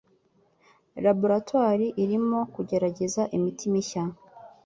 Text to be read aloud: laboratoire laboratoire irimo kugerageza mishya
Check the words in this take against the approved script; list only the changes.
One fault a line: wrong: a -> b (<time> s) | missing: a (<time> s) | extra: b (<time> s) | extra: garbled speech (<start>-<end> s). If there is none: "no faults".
missing: laboratoire (1.9 s)
extra: imiti (3.4 s)